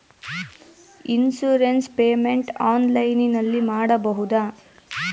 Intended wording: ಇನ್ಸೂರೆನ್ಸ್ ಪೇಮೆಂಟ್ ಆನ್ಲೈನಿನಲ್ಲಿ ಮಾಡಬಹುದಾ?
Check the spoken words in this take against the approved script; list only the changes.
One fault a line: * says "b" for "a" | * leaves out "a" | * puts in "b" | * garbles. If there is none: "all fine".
all fine